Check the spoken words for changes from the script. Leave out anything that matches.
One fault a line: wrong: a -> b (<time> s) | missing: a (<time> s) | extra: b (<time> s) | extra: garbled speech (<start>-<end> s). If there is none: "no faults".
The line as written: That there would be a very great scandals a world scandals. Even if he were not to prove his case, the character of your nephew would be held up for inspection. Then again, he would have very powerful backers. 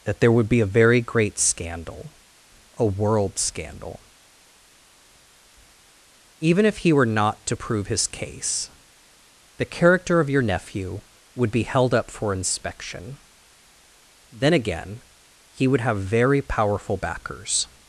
wrong: scandals -> scandal (1.4 s)
wrong: scandals -> scandal (3.4 s)